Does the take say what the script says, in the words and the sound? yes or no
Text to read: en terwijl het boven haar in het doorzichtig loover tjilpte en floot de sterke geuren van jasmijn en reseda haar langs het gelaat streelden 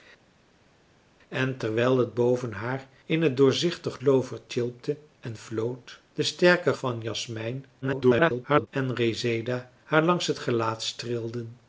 no